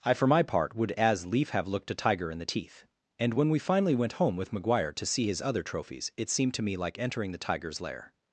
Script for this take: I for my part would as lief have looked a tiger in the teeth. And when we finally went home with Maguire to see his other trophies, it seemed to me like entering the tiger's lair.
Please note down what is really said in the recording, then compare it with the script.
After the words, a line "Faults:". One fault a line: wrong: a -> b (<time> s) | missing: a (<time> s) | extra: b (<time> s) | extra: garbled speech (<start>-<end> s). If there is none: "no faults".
I for my part would as lief have looked a tiger in the teeth. And when we finally went home with Maguire to see his other trophies, it seemed to me like entering the tiger's lair.
Faults:
no faults